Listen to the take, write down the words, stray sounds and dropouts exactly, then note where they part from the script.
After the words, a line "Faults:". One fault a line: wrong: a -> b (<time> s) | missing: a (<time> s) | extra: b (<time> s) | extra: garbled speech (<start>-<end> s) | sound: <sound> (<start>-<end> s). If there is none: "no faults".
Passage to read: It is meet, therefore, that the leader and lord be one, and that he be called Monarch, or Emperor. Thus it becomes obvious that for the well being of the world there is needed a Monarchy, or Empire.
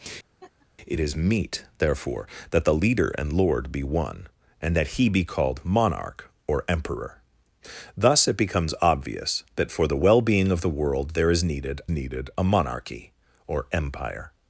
It is meet, therefore, that the leader and lord be one, and that he be called Monarch, or Emperor. Thus it becomes obvious that for the well being of the world there is needed needed a Monarchy, or Empire.
Faults:
sound: laugh (0.4-0.7 s)
extra: needed (11.9 s)